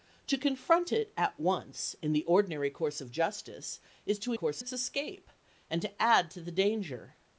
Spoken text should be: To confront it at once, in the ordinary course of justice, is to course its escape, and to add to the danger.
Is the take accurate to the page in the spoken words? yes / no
yes